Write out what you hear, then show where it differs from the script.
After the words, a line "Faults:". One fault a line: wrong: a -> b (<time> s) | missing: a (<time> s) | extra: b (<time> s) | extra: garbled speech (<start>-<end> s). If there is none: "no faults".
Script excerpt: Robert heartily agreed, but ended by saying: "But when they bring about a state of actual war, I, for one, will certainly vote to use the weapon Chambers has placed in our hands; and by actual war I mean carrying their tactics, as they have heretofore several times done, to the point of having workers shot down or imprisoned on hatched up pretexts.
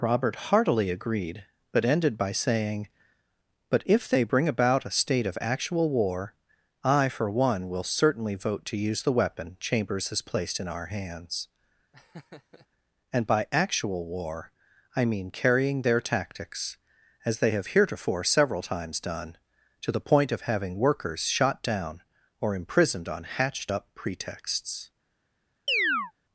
Robert heartily agreed, but ended by saying: "But if they bring about a state of actual war, I, for one, will certainly vote to use the weapon Chambers has placed in our hands; and by actual war I mean carrying their tactics, as they have heretofore several times done, to the point of having workers shot down or imprisoned on hatched up pretexts.
Faults:
wrong: when -> if (3.9 s)